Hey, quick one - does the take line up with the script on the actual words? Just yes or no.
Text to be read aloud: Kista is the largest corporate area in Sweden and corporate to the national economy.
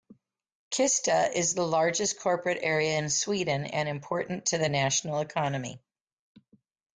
no